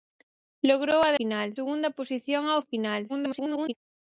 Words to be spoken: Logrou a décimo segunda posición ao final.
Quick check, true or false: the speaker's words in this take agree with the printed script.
false